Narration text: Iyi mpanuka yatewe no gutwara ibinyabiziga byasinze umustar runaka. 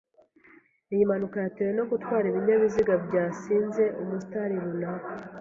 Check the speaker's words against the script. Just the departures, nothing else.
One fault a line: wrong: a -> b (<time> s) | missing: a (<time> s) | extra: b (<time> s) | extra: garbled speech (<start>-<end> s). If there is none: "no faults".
no faults